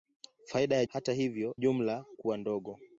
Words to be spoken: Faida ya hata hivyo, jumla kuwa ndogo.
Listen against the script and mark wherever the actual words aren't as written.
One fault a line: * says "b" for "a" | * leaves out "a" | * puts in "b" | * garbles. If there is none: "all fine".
all fine